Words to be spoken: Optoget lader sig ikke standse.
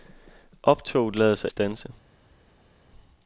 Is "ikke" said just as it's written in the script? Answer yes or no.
no